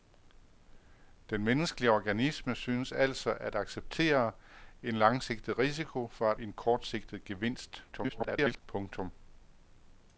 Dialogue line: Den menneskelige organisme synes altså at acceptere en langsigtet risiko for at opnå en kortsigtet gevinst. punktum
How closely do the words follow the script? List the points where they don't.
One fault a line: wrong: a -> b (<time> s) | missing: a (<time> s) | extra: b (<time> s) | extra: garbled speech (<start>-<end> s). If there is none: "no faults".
missing: opnå (6.4 s)
extra: garbled speech (7.9-8.6 s)